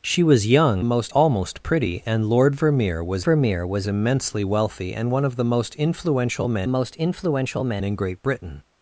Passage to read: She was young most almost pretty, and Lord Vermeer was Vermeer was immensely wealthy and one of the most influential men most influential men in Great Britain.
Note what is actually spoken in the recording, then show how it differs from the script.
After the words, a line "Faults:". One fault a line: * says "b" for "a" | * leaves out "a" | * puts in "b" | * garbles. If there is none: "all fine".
She was young most almost pretty, and Lord Vermeer was Vermeer was immensely wealthy and one of the most influential men most influential men in Great Britain.
Faults:
all fine